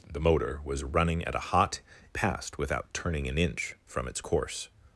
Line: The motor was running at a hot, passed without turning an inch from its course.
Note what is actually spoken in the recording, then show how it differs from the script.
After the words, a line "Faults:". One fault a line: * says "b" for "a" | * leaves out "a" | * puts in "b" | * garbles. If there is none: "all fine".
The motor was running at a hot, passed without turning an inch from its course.
Faults:
all fine